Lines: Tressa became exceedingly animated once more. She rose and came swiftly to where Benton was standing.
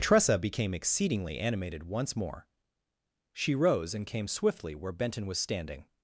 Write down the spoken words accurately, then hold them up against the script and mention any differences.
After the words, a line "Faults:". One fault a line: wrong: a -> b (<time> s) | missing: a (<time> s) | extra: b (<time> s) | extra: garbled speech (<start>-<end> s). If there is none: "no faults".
Tressa became exceedingly animated once more. She rose and came swiftly where Benton was standing.
Faults:
missing: to (4.7 s)